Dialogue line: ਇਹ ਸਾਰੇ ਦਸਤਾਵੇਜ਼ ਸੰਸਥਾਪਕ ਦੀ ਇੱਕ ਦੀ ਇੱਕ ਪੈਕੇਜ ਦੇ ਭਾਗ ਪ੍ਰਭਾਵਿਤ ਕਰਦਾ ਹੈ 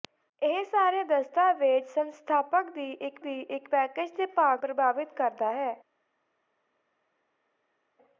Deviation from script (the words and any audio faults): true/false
false